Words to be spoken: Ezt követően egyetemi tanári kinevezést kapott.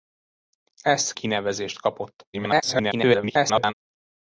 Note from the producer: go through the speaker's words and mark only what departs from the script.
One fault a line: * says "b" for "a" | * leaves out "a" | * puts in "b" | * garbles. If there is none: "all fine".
* leaves out "követően egyetemi tanári"
* garbles